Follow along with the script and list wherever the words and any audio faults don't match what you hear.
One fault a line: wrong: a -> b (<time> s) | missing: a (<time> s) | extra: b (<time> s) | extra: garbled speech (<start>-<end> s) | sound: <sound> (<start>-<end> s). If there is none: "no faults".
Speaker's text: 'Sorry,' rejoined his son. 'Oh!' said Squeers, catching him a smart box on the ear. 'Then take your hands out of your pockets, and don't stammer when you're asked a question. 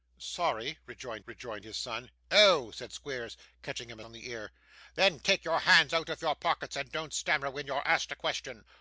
extra: rejoined (1.3 s)
missing: smart box (4.0 s)